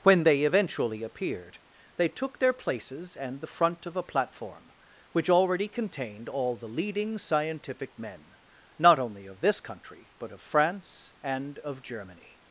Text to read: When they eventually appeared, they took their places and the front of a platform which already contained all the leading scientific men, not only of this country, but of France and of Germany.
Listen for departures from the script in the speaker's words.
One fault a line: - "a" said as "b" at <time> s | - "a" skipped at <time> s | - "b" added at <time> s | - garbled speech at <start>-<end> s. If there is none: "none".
none